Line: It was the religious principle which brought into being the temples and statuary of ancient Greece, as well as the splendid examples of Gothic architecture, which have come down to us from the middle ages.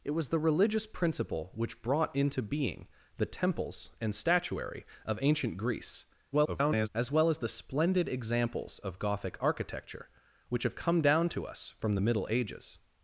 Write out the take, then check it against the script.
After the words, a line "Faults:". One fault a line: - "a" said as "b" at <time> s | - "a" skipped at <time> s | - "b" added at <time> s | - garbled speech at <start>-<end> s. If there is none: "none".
It was the religious principle which brought into being the temples and statuary of ancient Greece, [garbled] as well as the splendid examples of Gothic architecture, which have come down to us from the middle ages.
Faults:
- garbled speech at 6.3-6.9 s